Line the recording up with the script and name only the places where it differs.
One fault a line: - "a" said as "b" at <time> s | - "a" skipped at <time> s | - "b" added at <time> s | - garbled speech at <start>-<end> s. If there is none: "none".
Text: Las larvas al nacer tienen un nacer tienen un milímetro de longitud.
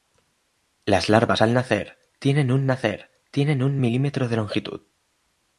none